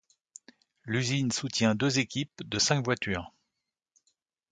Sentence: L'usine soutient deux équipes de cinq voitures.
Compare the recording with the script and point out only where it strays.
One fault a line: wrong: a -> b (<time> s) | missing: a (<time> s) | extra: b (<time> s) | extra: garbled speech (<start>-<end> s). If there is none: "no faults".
no faults